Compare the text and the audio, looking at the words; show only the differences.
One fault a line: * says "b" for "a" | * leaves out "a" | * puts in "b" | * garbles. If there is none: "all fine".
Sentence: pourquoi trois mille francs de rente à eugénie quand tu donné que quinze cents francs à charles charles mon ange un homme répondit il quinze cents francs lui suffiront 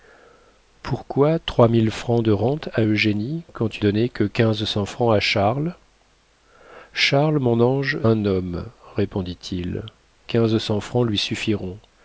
all fine